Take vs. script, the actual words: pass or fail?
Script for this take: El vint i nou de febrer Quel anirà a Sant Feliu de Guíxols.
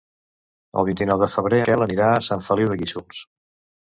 pass